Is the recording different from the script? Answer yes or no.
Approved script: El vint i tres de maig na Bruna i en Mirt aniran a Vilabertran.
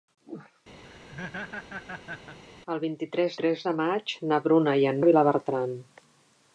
yes